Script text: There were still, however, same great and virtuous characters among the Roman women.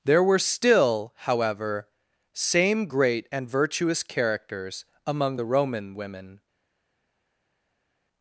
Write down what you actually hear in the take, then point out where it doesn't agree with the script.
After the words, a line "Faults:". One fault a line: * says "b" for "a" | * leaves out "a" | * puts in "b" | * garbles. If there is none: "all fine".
There were still, however, same great and virtuous characters among the Roman women.
Faults:
all fine